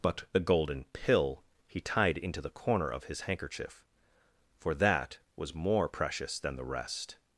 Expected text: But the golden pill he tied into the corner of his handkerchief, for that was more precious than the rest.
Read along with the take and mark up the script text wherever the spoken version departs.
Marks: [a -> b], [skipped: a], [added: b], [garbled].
But the golden pill he tied into the corner of his handkerchief, for that was more precious than the rest.